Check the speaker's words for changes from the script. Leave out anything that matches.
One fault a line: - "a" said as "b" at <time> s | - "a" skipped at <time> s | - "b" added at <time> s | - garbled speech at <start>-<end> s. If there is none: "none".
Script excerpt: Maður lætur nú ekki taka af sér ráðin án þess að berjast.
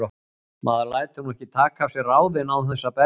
none